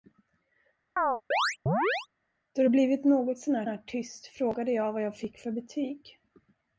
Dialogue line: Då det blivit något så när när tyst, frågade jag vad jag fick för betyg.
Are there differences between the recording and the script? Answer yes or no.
no